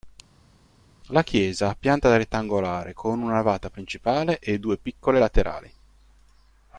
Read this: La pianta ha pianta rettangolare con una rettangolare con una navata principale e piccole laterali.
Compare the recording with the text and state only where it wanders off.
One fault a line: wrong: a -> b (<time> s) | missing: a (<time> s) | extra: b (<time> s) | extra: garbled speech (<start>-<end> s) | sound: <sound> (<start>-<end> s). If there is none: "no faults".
wrong: pianta -> chiesa (1.2 s)
missing: rettangolare con una (3.3 s)
extra: due (4.6 s)